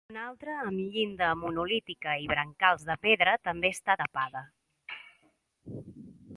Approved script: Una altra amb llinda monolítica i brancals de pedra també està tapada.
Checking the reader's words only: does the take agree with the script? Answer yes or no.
yes